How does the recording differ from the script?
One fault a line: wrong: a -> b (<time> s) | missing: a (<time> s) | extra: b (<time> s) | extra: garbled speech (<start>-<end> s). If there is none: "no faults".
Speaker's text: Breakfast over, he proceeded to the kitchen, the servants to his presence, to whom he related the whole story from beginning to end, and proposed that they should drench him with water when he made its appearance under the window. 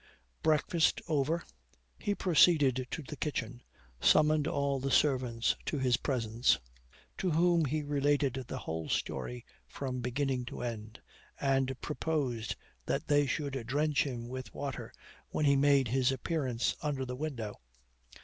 extra: summoned all (4.0 s)
wrong: its -> his (15.9 s)